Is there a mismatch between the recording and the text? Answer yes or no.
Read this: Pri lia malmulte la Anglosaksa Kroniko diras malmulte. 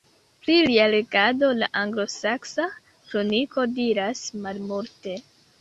yes